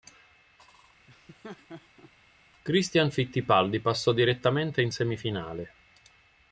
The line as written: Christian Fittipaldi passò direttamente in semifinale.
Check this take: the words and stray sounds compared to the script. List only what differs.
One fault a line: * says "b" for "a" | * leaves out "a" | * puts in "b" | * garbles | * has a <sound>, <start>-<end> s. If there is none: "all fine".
* has a laugh, 1.1-2.1 s